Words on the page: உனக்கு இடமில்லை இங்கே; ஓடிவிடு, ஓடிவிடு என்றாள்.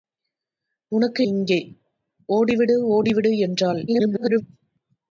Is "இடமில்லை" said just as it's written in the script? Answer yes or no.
no